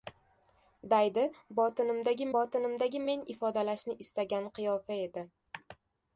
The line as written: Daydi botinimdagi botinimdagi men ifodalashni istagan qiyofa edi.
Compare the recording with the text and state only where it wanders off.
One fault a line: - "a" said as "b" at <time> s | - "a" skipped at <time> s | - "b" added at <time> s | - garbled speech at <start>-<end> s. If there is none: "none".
none